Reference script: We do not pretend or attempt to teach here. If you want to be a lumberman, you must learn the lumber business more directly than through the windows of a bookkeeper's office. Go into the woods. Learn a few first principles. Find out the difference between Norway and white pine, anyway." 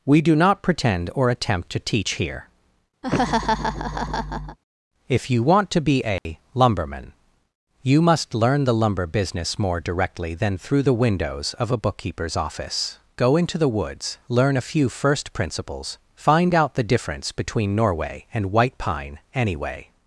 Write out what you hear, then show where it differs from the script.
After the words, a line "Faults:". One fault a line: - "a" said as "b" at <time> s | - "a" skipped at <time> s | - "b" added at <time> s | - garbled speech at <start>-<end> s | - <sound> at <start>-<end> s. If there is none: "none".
We do not pretend or attempt to teach here. If you want to be a lumberman, you must learn the lumber business more directly than through the windows of a bookkeeper's office. Go into the woods. Learn a few first principles. Find out the difference between Norway and white pine, anyway."
Faults:
- laugh at 3.0-4.6 s
- dropout at 6.2-6.3 s